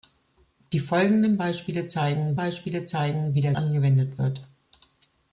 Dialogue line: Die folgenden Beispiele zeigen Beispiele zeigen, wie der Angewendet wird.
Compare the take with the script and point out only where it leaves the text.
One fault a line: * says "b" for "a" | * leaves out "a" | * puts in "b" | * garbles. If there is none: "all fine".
all fine